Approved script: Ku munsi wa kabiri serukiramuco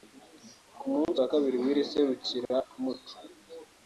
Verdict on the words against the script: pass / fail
fail